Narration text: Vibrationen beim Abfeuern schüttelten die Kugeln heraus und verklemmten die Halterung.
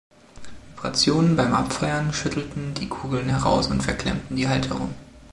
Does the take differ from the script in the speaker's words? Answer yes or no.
no